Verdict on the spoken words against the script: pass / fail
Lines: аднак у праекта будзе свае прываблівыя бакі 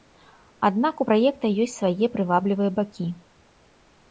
fail